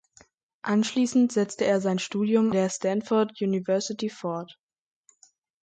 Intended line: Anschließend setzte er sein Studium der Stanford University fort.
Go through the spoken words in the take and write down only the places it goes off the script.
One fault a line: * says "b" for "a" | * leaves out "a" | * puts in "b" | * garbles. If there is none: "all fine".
all fine